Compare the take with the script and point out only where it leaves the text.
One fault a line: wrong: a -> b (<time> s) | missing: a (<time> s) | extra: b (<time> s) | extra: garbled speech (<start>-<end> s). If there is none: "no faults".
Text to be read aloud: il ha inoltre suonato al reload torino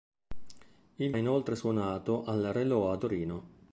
no faults